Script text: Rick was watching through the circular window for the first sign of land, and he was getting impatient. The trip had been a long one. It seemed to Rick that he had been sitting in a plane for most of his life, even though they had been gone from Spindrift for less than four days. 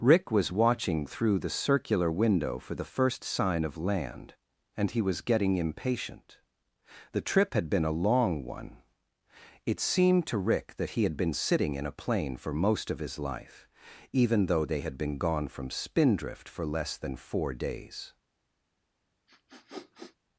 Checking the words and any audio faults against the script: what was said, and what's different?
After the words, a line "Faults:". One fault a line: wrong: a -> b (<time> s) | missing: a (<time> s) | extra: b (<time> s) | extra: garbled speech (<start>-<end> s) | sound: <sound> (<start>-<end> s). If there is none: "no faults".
Rick was watching through the circular window for the first sign of land, and he was getting impatient. The trip had been a long one. It seemed to Rick that he had been sitting in a plane for most of his life, even though they had been gone from Spindrift for less than four days.
Faults:
sound: sniff (19.3-20.2 s)